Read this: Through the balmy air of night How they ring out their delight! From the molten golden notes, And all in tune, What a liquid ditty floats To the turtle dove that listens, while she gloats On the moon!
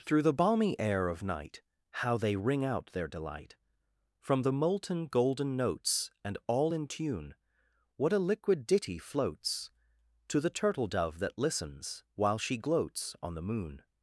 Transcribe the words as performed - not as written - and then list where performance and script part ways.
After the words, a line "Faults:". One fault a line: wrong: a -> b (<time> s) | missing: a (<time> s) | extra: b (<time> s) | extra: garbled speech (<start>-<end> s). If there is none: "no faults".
Through the balmy air of night How they ring out their delight! From the molten golden notes, And all in tune, What a liquid ditty floats To the turtle dove that listens, while she gloats On the moon!
Faults:
no faults